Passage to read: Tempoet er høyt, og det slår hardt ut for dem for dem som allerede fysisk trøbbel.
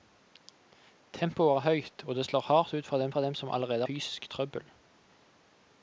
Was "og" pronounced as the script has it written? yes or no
yes